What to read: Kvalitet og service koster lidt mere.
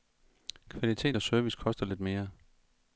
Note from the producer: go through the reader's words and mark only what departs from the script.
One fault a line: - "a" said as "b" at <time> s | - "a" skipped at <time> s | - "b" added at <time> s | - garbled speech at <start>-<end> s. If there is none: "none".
none